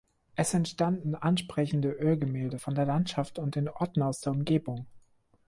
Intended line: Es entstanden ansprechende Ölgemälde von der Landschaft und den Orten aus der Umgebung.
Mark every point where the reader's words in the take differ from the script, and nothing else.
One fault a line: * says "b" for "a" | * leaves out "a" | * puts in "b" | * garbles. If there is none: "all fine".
all fine